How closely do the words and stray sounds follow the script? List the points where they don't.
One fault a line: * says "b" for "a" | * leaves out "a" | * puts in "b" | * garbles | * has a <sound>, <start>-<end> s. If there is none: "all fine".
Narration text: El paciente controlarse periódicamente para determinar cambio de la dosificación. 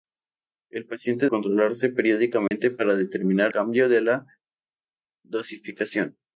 * has a dropout, 2.5-2.5 s